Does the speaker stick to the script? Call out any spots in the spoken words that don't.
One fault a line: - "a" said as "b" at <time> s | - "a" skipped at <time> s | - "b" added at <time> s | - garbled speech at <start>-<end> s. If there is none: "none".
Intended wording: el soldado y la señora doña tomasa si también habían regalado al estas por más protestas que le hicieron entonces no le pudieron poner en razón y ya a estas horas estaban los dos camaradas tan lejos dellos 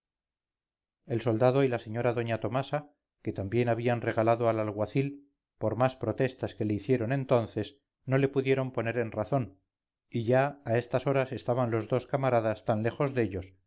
- "si" said as "que" at 3.2 s
- "estas" said as "alguacil" at 4.6 s